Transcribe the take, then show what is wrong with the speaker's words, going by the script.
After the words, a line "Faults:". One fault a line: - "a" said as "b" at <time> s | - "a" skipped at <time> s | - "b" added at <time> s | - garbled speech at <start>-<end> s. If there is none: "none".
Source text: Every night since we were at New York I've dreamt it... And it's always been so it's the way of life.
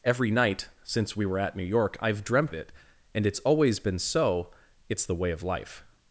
Every night since we were at New York I've dreamt it... And it's always been so it's the way of life.
Faults:
none